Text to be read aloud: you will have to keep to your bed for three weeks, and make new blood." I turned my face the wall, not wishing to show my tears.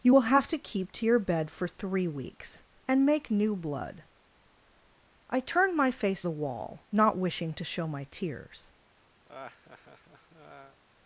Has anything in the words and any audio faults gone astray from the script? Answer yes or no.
yes